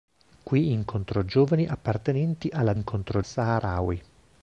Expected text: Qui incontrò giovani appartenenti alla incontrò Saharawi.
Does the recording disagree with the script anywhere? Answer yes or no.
no